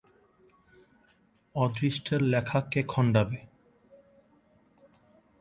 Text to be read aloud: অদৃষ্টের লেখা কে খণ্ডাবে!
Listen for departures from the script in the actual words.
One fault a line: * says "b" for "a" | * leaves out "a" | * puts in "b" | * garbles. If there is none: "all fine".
all fine